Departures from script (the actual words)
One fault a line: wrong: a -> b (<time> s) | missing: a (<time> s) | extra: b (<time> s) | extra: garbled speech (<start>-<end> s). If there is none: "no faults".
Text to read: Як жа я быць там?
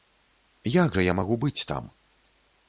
extra: магу (1.2 s)